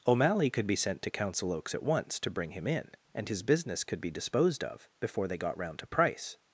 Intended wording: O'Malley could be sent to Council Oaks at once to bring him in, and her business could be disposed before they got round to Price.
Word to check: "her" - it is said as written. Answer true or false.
false